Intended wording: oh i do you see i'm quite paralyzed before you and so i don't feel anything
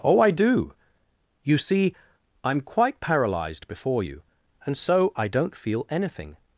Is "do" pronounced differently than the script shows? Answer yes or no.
no